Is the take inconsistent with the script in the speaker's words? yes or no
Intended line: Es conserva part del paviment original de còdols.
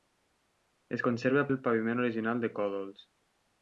yes